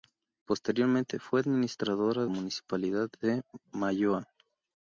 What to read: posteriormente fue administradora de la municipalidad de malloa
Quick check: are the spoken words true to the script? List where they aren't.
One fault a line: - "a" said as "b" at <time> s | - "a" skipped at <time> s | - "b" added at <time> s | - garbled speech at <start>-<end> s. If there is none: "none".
- "de la" skipped at 2.2 s